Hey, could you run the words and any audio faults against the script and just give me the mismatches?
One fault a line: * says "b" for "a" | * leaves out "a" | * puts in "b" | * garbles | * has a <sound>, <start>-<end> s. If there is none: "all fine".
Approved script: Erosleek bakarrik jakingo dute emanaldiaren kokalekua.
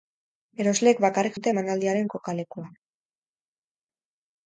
* leaves out "jakingo"